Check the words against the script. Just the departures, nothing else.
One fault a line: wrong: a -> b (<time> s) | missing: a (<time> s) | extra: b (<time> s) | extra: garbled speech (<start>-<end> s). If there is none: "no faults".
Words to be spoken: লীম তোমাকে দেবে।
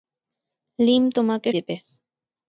no faults